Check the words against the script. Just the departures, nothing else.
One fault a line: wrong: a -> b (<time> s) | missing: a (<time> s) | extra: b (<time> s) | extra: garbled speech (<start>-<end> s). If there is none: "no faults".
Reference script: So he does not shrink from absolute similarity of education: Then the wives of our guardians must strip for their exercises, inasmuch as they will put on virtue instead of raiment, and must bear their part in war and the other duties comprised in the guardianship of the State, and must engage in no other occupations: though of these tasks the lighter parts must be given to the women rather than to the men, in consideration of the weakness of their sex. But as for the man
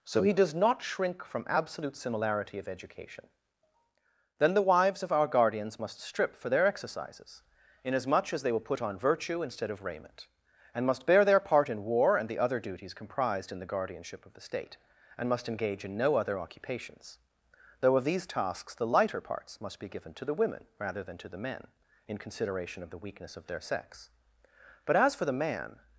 no faults